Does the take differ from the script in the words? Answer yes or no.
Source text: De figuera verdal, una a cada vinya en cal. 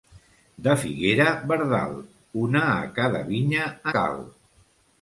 yes